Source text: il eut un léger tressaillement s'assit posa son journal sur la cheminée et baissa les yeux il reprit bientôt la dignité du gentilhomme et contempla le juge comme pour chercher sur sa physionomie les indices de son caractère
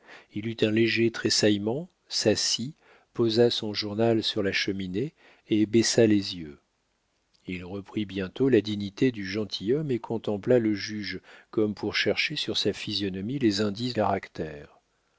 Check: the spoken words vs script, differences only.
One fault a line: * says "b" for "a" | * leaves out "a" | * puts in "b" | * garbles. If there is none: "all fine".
* leaves out "de son"